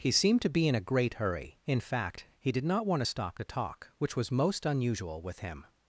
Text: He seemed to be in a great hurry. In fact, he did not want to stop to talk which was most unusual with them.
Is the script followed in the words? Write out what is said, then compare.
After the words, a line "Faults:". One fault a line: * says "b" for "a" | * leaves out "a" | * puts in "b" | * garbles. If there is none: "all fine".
He seemed to be in a great hurry. In fact, he did not want to stop to talk which was most unusual with him.
Faults:
* says "him" for "them"